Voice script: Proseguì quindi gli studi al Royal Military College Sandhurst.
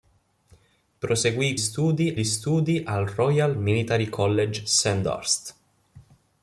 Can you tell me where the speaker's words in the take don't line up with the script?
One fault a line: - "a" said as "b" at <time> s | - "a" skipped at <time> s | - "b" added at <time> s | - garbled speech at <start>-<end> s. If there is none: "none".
- "quindi" said as "studi" at 1.6 s